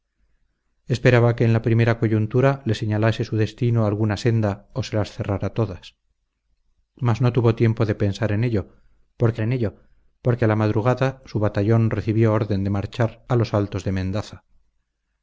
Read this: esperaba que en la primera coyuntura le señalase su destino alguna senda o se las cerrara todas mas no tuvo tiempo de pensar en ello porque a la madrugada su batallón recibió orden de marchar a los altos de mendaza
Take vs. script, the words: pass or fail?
fail